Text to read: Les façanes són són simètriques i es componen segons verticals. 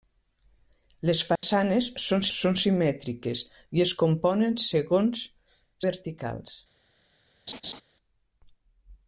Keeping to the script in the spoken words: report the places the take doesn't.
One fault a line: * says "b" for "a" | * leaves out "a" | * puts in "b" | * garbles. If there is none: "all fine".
all fine